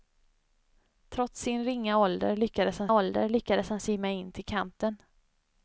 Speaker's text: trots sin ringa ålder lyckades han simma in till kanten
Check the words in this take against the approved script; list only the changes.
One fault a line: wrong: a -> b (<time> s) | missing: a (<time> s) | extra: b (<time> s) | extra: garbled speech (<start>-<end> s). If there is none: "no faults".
extra: ålder lyckades han (2.9 s)